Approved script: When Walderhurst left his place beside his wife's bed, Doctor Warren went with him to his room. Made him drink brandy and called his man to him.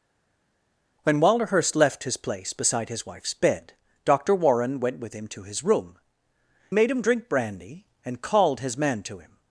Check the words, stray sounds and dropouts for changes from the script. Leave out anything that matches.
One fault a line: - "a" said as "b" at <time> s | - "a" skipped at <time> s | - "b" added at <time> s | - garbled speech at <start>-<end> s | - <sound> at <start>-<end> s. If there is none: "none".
none